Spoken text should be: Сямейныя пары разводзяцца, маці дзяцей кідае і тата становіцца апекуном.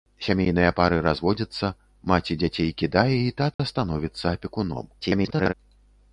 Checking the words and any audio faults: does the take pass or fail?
fail